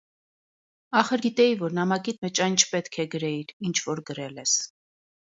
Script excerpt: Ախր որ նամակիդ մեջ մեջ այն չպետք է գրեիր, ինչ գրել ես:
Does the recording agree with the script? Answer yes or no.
no